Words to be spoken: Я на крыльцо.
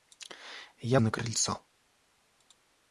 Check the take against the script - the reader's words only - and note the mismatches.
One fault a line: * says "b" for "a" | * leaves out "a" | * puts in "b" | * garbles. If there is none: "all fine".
all fine